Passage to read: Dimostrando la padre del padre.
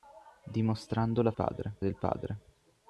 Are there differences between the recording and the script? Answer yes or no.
no